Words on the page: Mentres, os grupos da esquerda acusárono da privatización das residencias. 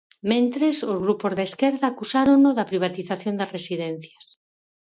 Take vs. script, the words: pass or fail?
pass